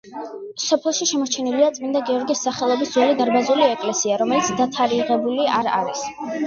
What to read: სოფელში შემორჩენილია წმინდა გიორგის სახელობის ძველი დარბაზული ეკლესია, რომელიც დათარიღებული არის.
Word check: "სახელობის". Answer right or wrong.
right